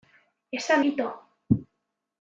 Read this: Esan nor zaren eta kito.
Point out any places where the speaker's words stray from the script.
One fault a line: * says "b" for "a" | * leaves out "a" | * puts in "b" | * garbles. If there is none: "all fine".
* leaves out "nor zaren eta"